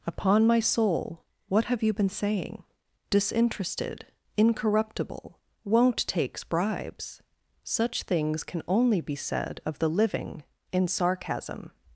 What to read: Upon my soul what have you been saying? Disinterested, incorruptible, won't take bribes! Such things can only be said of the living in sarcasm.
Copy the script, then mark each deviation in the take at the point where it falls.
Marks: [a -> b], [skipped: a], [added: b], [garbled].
Upon my soul what have you been saying? Disinterested, incorruptible, won't [take -> takes] bribes! Such things can only be said of the living in sarcasm.